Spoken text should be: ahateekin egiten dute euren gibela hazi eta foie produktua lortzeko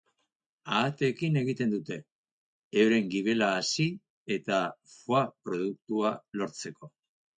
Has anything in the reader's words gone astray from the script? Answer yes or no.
no